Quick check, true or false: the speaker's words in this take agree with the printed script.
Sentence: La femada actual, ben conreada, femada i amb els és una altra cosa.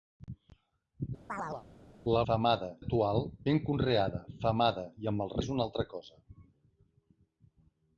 true